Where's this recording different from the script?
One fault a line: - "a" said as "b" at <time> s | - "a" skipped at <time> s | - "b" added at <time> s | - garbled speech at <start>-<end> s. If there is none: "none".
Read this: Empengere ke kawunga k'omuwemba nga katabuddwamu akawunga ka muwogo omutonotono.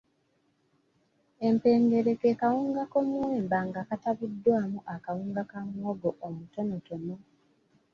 none